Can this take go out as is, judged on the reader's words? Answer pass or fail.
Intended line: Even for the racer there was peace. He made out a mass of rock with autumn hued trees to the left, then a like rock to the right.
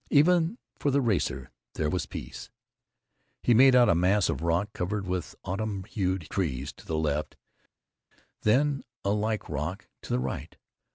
fail